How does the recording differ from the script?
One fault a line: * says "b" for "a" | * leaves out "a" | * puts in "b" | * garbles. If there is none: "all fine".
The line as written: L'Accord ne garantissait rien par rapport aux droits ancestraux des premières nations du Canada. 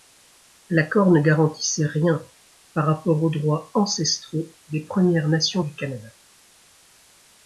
all fine